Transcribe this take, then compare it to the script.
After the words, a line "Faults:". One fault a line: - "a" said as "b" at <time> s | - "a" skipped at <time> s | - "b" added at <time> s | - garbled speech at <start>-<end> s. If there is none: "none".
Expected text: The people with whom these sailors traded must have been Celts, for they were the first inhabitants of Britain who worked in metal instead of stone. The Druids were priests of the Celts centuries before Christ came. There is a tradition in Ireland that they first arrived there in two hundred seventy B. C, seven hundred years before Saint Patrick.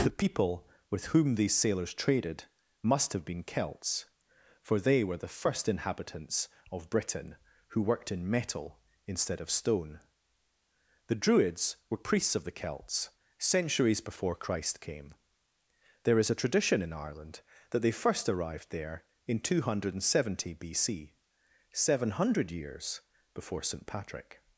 The people with whom these sailors traded must have been Celts, for they were the first inhabitants of Britain who worked in metal instead of stone. The Druids were priests of the Celts centuries before Christ came. There is a tradition in Ireland that they first arrived there in two hundred seventy B. C, seven hundred years before Saint Patrick.
Faults:
none